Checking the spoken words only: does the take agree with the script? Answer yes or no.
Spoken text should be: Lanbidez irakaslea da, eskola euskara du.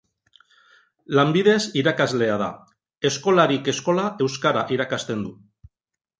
no